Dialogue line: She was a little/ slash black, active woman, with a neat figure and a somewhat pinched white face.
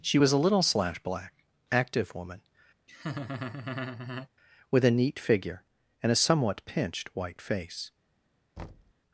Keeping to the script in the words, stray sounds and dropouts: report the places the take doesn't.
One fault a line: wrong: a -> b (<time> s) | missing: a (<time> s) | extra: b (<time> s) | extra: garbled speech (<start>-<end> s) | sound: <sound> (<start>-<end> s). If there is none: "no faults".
sound: laugh (2.9-4.3 s)
sound: thud (8.6-8.9 s)